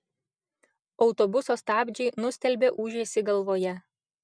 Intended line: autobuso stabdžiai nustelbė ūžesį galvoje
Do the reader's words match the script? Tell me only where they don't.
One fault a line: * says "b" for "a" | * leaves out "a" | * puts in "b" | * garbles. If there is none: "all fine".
all fine